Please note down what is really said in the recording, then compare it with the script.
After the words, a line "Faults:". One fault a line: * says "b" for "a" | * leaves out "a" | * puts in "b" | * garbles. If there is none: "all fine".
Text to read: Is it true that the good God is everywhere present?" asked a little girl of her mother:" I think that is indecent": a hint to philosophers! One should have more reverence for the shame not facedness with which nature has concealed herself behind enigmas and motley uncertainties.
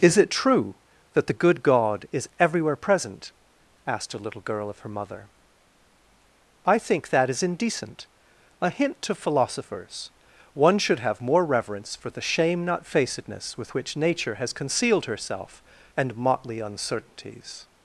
Is it true that the good God is everywhere present?" asked a little girl of her mother:" I think that is indecent": a hint to philosophers! One should have more reverence for the shame not facedness with which nature has concealed herself and motley uncertainties.
Faults:
* leaves out "behind enigmas"